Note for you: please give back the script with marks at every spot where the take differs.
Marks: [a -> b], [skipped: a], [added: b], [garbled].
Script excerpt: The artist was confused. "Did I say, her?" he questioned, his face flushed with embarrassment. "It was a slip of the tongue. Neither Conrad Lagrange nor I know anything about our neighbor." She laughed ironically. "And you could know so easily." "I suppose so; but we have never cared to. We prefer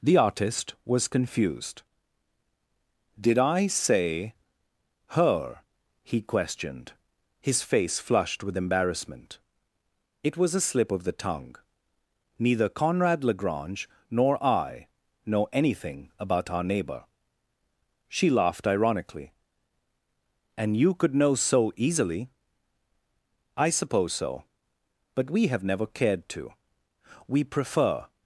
The artist was confused. "Did I say, her?" he questioned, his face flushed with embarrassment. "It was a slip of the tongue. Neither Conrad Lagrange nor I know anything about our neighbor." She laughed ironically. "And you could know so easily." "I suppose so; but we have never cared to. We prefer